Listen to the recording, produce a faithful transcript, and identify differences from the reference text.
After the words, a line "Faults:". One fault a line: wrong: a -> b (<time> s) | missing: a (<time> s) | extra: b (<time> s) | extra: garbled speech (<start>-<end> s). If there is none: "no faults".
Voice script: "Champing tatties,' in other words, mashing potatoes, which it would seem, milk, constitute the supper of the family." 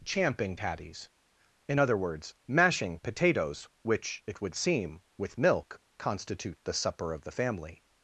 "Champing tatties,' in other words, mashing potatoes, which it would seem, with milk, constitute the supper of the family."
Faults:
extra: with (5.2 s)